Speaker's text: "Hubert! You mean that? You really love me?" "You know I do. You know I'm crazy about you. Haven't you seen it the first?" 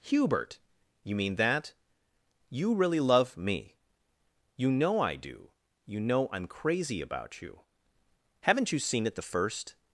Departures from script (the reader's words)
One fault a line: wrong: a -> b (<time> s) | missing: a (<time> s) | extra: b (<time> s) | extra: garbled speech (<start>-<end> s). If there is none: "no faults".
no faults